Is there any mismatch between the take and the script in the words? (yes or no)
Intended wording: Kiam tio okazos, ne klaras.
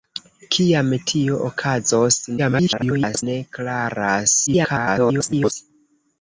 yes